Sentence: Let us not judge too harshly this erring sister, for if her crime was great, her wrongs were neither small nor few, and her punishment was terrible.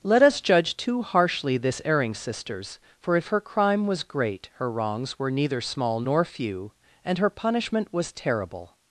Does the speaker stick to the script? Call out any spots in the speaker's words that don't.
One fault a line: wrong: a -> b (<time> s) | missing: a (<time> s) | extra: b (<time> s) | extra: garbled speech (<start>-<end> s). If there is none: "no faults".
missing: not (0.4 s)
wrong: sister -> sisters (2.1 s)